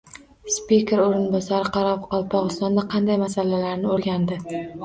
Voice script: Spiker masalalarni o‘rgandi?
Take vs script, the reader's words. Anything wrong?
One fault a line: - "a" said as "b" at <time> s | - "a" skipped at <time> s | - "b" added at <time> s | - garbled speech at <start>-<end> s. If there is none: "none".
- "o‘rinbosari Qoraqalpog‘istonda qanday" added at 1.0 s